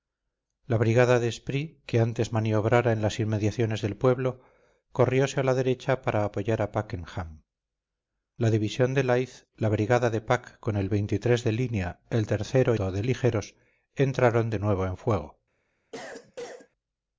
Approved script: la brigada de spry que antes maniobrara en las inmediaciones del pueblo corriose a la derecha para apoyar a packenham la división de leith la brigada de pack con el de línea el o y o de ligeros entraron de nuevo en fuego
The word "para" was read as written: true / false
true